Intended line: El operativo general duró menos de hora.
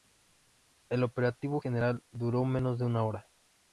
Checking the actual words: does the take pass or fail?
fail